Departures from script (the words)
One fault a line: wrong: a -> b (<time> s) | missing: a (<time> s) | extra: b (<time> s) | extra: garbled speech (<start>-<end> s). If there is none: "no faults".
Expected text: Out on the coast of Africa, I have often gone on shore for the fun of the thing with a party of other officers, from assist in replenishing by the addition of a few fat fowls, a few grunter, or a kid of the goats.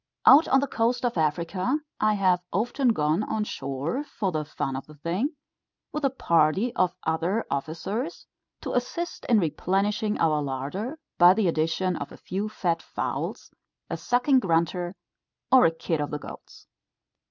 wrong: from -> to (8.6 s)
extra: our larder (10.2 s)
wrong: few -> sucking (13.9 s)